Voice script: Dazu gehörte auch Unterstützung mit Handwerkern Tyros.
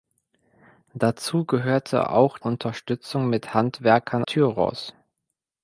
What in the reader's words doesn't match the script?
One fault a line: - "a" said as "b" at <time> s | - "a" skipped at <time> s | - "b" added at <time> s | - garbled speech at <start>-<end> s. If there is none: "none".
none